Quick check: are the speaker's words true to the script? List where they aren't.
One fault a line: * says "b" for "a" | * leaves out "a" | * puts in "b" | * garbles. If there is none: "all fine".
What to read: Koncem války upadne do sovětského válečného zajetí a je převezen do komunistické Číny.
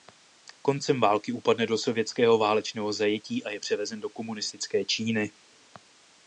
all fine